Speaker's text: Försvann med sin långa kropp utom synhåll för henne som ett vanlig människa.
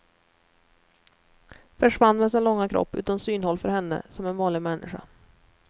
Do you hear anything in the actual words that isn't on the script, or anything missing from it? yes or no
yes